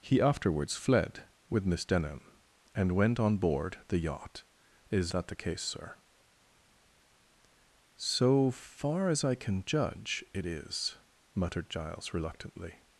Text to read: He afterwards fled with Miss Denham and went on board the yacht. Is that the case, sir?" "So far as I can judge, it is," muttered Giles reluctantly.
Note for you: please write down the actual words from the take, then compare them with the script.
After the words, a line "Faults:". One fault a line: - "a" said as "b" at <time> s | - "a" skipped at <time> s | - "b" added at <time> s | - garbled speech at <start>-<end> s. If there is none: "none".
He afterwards fled with Miss Denham and went on board the yacht. Is that the case, sir?" "So far as I can judge, it is," muttered Giles reluctantly.
Faults:
none